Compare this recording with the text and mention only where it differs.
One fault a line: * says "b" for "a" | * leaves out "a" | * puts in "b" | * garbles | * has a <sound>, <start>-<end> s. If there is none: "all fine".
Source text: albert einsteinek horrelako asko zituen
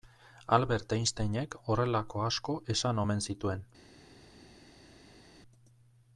* puts in "esan omen"